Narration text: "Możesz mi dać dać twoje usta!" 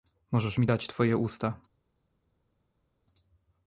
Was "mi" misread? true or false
false